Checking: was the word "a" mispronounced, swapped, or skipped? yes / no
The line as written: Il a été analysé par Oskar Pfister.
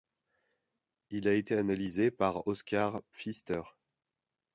no